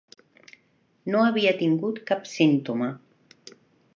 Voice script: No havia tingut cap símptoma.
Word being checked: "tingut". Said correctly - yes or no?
yes